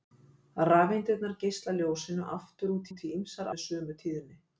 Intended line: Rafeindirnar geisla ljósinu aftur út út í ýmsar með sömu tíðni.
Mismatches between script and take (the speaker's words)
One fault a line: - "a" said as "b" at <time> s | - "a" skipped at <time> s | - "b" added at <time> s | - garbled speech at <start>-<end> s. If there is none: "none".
none